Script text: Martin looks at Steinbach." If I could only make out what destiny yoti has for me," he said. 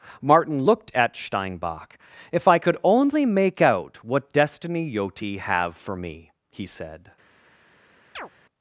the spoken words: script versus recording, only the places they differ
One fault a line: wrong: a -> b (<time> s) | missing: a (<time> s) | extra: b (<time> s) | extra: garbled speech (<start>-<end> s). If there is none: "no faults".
wrong: looks -> looked (0.6 s)
wrong: has -> have (5.4 s)